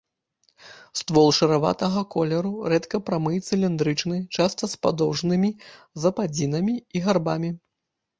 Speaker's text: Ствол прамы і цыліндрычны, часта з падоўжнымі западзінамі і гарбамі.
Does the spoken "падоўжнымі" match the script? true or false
true